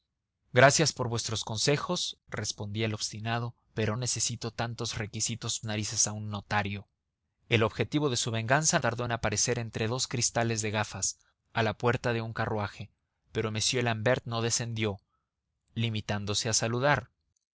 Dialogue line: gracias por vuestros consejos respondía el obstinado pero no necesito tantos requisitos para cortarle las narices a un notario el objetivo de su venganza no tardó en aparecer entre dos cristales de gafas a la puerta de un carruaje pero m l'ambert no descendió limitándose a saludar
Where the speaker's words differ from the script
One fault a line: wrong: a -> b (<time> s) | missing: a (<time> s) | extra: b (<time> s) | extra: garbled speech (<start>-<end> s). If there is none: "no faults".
missing: no (4.0 s)
missing: para cortarle las (5.6 s)
missing: no (8.8 s)